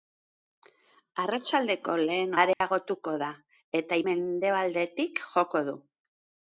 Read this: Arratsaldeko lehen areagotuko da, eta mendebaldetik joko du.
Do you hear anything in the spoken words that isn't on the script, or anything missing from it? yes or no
no